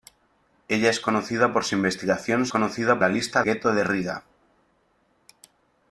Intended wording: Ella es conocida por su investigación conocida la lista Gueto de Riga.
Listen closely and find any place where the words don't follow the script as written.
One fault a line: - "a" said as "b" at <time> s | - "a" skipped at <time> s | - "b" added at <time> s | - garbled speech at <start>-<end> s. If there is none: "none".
none